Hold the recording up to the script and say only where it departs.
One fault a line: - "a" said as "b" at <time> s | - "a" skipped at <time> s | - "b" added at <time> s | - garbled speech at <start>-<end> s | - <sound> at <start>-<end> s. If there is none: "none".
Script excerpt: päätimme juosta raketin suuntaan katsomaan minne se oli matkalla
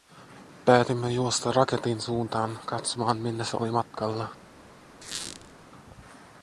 - squeak at 5.0-5.5 s